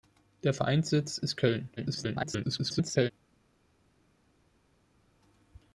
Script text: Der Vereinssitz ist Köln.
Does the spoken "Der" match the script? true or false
true